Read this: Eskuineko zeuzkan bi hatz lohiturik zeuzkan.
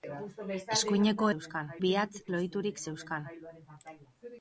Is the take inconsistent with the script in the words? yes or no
no